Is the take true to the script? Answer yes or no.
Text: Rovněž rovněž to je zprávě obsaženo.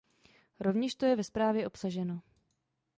no